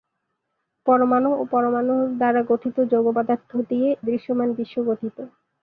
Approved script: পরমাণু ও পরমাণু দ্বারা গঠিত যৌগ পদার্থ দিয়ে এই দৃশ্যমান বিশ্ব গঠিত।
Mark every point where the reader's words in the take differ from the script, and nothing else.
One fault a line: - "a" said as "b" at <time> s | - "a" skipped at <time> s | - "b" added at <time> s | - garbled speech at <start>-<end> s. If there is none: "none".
- "এই" skipped at 3.9 s